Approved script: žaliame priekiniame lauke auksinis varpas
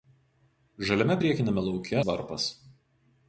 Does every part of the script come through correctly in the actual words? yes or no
no